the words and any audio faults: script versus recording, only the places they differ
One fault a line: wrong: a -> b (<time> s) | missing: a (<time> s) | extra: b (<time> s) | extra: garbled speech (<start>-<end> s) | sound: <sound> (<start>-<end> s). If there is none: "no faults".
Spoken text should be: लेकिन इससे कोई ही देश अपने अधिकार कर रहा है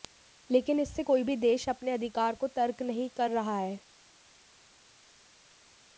wrong: ही -> भी (1.2 s)
extra: को तर्क नहीं (2.3 s)